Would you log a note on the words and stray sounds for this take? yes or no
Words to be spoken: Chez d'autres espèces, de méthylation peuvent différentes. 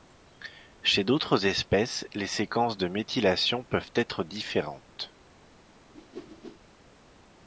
yes